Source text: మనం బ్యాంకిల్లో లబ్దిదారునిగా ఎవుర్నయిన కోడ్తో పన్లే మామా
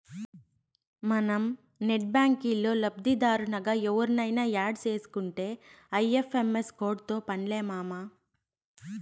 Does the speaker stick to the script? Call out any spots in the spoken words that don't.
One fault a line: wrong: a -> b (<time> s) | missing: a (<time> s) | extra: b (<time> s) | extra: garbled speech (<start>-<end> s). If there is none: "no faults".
extra: నెట్ (1.8 s)
extra: యాడ్ సేసుకుంటే ఐ.ఎఫ్.ఎం.ఎస్ (4.5 s)